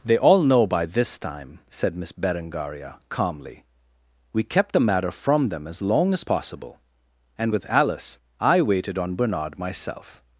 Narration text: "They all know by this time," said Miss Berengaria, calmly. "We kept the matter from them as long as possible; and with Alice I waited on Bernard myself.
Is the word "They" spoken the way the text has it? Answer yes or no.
yes